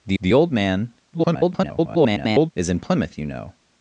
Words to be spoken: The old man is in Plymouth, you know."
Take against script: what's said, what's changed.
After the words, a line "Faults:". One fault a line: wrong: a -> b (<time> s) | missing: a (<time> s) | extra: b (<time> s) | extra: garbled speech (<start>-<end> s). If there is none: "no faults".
The the old man [garbled] is in Plymouth, you know."
Faults:
extra: the (0.2 s)
extra: garbled speech (1.1-2.5 s)